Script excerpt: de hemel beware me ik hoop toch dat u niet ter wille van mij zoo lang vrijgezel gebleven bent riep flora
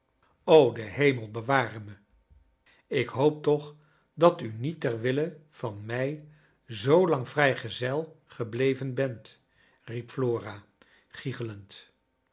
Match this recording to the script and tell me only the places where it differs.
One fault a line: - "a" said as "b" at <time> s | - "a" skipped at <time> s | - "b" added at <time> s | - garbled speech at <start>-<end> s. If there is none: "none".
none